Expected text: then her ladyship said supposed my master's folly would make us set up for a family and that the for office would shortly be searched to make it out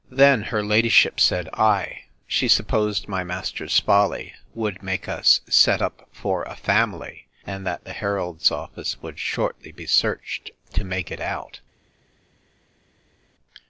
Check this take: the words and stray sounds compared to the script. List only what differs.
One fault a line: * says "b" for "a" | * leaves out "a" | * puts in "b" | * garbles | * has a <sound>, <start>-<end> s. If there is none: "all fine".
* puts in "ay she"
* says "heralds" for "for"